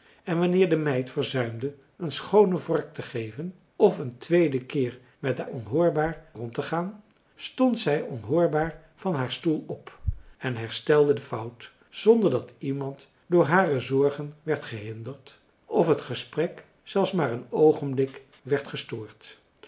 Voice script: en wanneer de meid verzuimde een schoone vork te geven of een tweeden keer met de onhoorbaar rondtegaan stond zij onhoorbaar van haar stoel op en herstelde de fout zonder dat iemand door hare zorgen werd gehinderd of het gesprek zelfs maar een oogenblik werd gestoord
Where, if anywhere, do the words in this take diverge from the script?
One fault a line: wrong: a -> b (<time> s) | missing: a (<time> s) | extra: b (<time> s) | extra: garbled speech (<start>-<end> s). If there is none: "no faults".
no faults